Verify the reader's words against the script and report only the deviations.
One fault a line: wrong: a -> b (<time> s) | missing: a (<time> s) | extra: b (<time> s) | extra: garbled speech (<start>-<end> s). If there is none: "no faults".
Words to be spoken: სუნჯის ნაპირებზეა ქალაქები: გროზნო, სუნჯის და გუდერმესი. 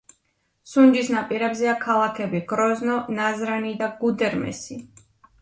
wrong: სუნჯის -> ნაზრანი (3.2 s)